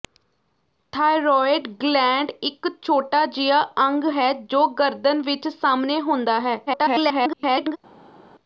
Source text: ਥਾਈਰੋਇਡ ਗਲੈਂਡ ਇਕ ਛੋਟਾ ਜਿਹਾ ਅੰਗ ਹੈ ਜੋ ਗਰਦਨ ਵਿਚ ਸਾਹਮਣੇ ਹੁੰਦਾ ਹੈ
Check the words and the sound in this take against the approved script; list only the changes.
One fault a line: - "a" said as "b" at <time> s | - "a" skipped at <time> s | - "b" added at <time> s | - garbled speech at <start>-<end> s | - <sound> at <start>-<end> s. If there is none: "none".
- garbled speech at 6.7-7.8 s